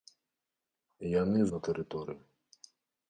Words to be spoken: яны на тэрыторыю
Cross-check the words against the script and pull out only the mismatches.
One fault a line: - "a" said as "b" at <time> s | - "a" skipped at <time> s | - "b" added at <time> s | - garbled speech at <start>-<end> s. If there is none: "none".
none